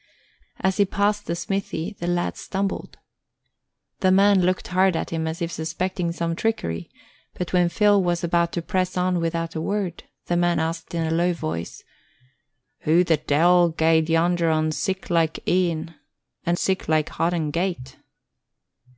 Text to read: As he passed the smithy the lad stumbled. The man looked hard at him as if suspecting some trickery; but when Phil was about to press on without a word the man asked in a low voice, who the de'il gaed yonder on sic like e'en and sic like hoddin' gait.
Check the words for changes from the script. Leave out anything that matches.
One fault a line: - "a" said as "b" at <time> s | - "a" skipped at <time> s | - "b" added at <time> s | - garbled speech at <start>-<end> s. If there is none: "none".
none